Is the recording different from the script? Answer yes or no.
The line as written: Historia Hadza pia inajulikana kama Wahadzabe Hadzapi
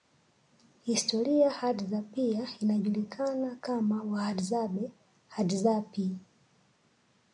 no